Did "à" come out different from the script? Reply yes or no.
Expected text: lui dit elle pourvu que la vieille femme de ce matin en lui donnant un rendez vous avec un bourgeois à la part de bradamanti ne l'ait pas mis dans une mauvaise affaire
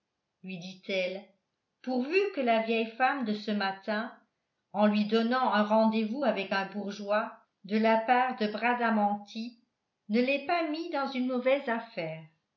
yes